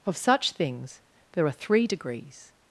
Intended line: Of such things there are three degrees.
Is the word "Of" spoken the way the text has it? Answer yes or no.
yes